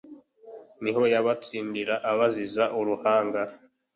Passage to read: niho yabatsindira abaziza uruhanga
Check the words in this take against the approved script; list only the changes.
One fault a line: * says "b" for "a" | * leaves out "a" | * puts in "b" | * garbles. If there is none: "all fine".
all fine